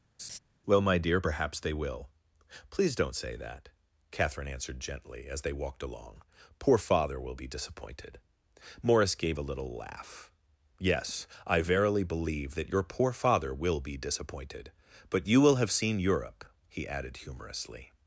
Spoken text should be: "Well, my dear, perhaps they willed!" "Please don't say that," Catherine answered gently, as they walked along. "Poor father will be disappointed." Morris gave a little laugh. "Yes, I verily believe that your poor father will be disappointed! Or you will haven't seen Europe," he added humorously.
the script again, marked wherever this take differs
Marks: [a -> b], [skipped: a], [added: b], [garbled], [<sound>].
[laugh] "Well, my dear, perhaps they [willed!" -> will] "Please don't say that," Catherine answered gently, as they walked along. "Poor father will be disappointed." Morris gave a little laugh. "Yes, I verily believe that your poor father will be disappointed! [Or -> But] you will [haven't -> have] seen Europe," he added humorously.